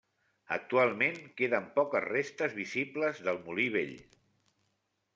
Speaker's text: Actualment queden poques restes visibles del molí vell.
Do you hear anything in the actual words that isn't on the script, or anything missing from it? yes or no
no